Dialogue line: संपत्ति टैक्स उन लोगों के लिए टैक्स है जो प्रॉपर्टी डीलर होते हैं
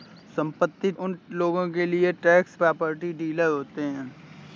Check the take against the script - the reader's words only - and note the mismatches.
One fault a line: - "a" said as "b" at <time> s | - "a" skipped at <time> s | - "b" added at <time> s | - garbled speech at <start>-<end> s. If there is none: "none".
- "टैक्स" skipped at 0.9 s
- "है जो" skipped at 2.6 s